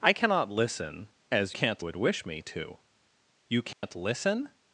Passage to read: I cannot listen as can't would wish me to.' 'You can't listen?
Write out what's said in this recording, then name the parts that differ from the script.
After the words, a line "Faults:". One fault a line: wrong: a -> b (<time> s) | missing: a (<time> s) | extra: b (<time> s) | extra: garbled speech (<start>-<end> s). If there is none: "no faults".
I cannot listen as can't would wish me to.' 'You can't listen?
Faults:
no faults